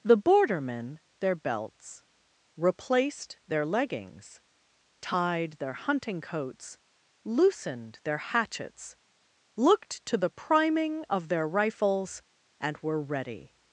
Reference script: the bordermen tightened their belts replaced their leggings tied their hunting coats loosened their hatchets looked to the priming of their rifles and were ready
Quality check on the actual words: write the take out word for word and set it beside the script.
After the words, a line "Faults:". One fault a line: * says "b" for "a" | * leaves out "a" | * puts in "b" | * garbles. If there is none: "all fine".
the bordermen their belts replaced their leggings tied their hunting coats loosened their hatchets looked to the priming of their rifles and were ready
Faults:
* leaves out "tightened"